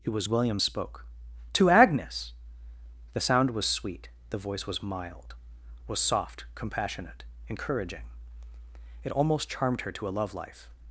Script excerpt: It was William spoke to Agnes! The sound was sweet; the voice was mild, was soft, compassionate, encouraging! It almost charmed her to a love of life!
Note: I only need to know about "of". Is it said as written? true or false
false